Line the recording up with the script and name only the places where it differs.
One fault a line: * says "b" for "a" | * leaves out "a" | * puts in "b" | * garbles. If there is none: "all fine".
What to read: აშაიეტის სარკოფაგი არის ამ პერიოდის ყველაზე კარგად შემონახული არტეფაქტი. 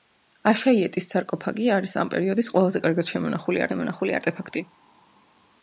* puts in "შემონახული"